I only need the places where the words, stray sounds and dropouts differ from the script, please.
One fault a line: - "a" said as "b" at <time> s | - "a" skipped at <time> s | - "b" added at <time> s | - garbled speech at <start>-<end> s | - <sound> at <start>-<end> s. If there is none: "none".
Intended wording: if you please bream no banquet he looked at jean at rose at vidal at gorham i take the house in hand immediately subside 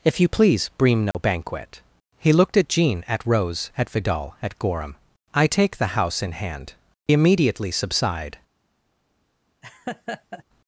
- dropout at 1.1-1.1 s
- laugh at 9.6-10.4 s